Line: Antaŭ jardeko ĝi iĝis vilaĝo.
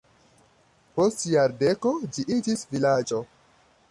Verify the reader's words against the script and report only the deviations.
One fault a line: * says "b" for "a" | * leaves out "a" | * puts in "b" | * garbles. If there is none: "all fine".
* says "Post" for "Antaŭ"